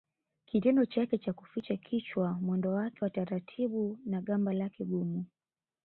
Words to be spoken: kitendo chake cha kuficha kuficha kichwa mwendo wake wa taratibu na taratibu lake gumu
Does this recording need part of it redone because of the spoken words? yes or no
yes